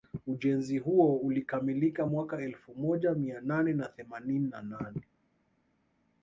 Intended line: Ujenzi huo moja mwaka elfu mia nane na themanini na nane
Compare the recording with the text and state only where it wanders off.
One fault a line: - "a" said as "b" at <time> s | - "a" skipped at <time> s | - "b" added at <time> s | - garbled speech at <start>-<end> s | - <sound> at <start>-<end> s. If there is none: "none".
- "moja" said as "ulikamilika" at 1.2 s
- "moja" added at 2.8 s